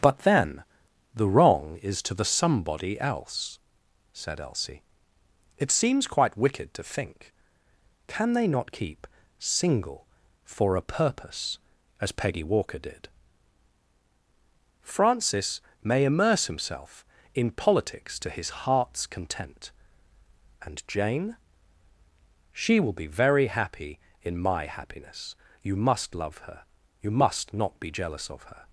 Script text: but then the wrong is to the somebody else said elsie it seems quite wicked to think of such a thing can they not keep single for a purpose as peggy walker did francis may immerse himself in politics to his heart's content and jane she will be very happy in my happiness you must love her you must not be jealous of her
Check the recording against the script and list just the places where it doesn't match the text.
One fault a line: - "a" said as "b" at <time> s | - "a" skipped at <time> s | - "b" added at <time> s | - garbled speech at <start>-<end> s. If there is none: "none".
- "of such a thing" skipped at 7.3 s